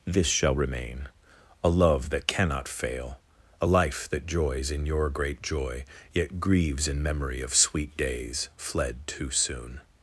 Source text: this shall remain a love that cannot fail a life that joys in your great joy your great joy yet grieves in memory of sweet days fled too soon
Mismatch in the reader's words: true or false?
true